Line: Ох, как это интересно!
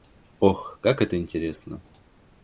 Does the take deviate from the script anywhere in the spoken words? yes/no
no